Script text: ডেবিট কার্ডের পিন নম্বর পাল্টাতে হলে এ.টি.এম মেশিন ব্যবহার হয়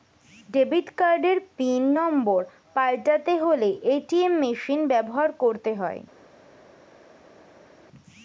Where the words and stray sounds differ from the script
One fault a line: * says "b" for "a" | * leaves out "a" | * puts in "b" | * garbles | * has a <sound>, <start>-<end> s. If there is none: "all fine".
* puts in "করতে"